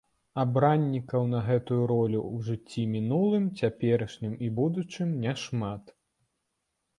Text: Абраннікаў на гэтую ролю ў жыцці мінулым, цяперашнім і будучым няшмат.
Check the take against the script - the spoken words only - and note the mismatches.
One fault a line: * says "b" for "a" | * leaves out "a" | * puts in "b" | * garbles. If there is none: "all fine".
all fine